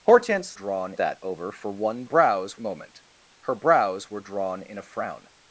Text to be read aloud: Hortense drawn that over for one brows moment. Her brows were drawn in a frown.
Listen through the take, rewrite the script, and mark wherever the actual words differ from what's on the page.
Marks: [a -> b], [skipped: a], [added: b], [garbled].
Hortense drawn that over for one brows moment. Her brows were drawn in a frown.